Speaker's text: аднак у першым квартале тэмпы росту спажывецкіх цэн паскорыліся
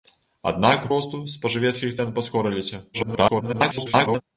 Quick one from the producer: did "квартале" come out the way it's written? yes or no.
no